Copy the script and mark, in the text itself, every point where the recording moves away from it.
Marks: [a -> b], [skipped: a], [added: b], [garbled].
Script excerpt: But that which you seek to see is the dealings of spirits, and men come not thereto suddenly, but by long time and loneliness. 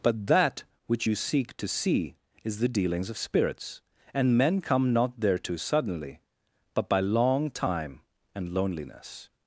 But that which you seek to see is the dealings of spirits, and men come not thereto suddenly, but by long time and loneliness.